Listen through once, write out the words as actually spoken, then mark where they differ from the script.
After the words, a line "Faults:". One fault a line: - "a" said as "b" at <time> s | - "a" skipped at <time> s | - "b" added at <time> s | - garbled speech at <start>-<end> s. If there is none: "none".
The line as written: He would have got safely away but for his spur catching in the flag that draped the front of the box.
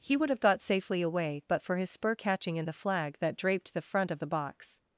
He would have got safely away but for his spur catching in the flag that draped the front of the box.
Faults:
none